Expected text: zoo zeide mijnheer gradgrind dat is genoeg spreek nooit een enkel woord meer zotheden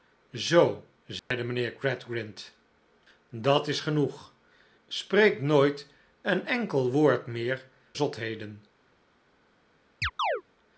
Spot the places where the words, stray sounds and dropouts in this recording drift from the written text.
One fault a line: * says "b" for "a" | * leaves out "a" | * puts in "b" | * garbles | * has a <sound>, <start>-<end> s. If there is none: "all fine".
* has a dropout, 1.2-1.3 s
* has a chirp, 10.0-10.4 s